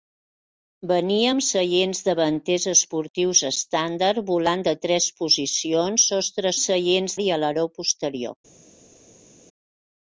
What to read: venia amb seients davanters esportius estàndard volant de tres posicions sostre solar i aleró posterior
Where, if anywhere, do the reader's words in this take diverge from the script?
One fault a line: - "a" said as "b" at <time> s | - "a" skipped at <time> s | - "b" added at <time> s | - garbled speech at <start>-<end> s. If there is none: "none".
- "solar" said as "seients" at 6.6 s